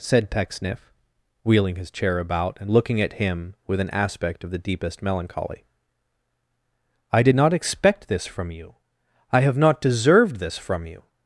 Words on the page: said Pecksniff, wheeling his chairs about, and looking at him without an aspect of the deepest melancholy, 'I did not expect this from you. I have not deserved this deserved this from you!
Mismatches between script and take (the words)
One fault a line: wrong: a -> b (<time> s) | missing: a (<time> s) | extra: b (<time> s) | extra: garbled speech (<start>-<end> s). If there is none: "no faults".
wrong: chairs -> chair (1.9 s)
wrong: without -> with (3.7 s)
missing: deserved this (10.6 s)